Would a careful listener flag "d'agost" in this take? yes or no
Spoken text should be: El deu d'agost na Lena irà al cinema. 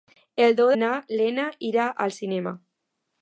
yes